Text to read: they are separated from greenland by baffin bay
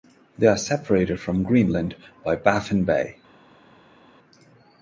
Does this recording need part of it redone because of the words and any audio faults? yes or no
no